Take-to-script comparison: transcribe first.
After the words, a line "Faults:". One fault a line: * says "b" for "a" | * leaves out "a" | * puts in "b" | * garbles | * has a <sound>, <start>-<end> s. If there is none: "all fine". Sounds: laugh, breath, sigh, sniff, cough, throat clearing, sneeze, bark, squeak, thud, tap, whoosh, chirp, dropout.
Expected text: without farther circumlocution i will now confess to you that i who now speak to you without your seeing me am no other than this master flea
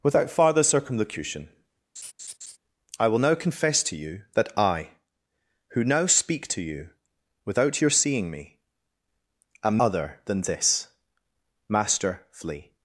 without farther circumlocution i will now confess to you that i who now speak to you without your seeing me am other than this master flea
Faults:
* has a laugh, 2.0-2.6 s
* leaves out "no"